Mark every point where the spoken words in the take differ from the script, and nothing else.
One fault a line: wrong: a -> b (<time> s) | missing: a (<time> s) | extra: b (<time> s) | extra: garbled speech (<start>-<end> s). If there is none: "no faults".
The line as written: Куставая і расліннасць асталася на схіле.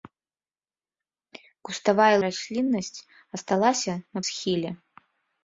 no faults